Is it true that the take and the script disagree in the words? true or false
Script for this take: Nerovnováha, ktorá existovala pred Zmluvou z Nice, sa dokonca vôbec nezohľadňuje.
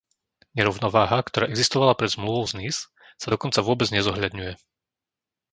false